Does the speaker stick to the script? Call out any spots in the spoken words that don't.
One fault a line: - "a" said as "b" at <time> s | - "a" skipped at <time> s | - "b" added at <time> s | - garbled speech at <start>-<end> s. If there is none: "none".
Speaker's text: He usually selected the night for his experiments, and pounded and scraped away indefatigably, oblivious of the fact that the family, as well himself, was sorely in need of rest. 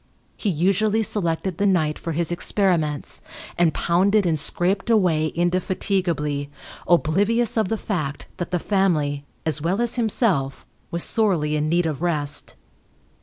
- "as" added at 9.8 s